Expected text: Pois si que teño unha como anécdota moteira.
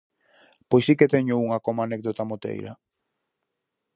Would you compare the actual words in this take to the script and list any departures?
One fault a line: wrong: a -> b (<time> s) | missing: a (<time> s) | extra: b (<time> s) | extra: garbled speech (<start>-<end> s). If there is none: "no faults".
no faults